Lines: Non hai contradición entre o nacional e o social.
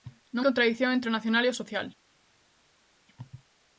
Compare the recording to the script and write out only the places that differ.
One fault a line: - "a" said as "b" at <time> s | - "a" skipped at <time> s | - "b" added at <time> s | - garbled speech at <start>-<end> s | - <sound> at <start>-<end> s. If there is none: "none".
- "hai" skipped at 0.5 s